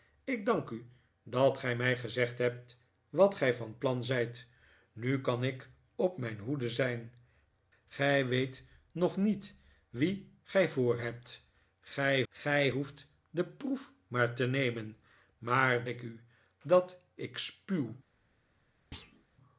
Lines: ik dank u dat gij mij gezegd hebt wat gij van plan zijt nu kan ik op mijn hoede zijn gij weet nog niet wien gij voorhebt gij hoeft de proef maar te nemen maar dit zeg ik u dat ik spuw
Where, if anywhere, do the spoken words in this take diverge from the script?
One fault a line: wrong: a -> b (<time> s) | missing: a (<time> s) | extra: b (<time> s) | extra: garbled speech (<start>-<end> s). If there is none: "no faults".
extra: gij (12.3 s)
missing: dit zeg (15.9 s)